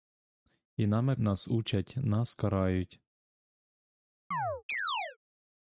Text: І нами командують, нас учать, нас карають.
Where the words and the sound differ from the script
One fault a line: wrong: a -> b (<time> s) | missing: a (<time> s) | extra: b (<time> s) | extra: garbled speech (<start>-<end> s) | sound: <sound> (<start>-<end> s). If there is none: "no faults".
missing: командують (1.1 s)
sound: chirp (4.3-5.2 s)